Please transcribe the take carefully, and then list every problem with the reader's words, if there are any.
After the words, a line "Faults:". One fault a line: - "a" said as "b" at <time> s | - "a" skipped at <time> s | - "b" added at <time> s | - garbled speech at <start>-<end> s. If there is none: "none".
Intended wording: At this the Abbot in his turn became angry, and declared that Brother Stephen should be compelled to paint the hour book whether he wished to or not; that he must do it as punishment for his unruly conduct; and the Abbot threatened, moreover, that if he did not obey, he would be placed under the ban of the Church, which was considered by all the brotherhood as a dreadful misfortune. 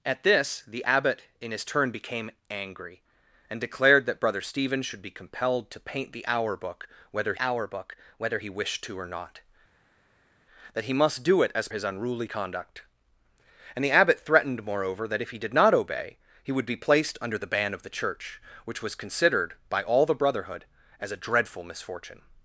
At this the Abbot in his turn became angry, and declared that Brother Stephen should be compelled to paint the hour book whether hour book whether he wished to or not; that he must do it as his unruly conduct; and the Abbot threatened, moreover, that if he did not obey, he would be placed under the ban of the Church, which was considered by all the brotherhood as a dreadful misfortune.
Faults:
- "hour book whether" added at 7.4 s
- "punishment for" skipped at 11.7 s